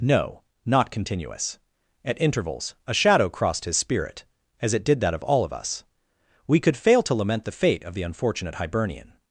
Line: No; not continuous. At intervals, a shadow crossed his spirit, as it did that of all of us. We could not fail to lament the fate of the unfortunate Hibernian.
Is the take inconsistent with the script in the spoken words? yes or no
yes